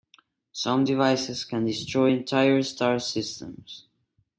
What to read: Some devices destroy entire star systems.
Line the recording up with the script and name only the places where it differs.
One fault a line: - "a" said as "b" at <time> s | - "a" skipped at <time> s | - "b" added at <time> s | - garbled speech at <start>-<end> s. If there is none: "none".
- "can" added at 1.4 s